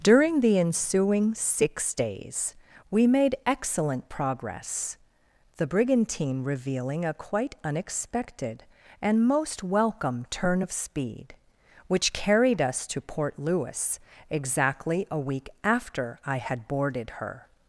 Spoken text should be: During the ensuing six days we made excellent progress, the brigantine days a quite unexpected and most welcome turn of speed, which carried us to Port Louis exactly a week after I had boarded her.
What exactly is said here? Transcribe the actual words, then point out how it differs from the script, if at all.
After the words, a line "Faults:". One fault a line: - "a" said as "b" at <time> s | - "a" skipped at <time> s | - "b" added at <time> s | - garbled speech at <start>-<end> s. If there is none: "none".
During the ensuing six days we made excellent progress, the brigantine revealing a quite unexpected and most welcome turn of speed, which carried us to Port Louis exactly a week after I had boarded her.
Faults:
- "days" said as "revealing" at 6.4 s